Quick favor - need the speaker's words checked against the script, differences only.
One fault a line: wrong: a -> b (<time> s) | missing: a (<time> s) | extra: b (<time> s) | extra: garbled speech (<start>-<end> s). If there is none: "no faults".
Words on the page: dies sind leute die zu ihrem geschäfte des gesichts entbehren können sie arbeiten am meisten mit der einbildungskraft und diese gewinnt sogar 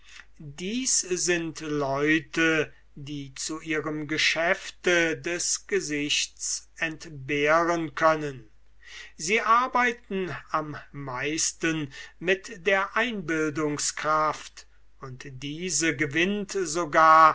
no faults